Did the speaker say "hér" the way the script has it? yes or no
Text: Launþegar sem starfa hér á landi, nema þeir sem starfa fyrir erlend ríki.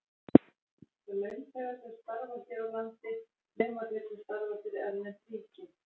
yes